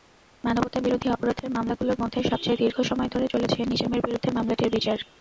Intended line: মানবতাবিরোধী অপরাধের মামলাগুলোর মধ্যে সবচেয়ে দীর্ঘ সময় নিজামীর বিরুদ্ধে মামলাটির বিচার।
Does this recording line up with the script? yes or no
no